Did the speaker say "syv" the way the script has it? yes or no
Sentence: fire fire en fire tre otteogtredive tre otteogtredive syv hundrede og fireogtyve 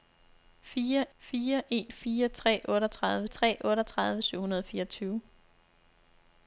yes